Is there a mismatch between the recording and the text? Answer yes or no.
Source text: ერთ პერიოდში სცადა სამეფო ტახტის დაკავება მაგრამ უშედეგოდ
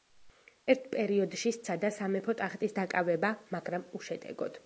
no